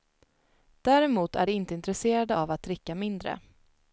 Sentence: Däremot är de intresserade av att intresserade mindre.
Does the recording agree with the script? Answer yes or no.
no